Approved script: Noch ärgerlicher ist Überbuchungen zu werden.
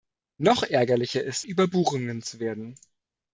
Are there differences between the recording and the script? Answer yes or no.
no